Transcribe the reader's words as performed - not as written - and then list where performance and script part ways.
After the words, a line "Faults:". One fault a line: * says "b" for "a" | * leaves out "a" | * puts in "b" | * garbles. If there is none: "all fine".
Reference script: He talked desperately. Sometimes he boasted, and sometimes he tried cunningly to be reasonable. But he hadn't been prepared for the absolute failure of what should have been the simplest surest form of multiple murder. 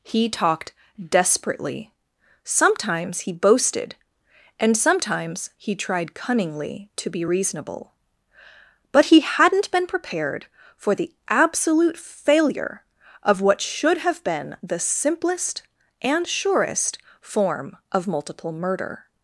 He talked desperately. Sometimes he boasted, and sometimes he tried cunningly to be reasonable. But he hadn't been prepared for the absolute failure of what should have been the simplest and surest form of multiple murder.
Faults:
* puts in "and"